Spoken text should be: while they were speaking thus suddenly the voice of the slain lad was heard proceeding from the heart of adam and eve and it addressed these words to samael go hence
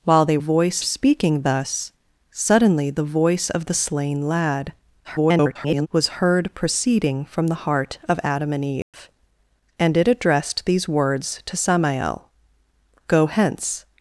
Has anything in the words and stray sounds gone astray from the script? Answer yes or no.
yes